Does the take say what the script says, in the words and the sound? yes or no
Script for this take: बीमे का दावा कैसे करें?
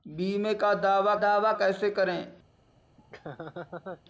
no